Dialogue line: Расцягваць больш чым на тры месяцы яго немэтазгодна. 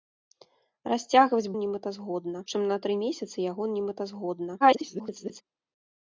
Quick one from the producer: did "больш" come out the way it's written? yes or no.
no